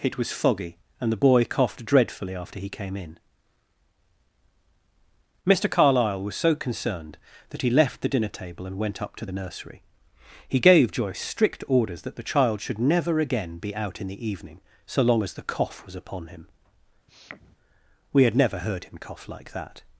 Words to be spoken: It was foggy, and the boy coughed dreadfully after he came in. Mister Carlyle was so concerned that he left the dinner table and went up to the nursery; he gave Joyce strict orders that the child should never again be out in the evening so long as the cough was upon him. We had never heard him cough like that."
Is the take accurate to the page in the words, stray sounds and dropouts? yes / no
no